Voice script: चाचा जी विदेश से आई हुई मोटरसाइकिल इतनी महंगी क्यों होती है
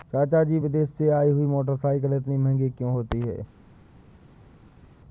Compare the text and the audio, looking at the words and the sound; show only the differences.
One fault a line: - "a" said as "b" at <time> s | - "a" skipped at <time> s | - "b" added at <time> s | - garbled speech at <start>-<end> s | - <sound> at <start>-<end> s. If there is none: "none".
none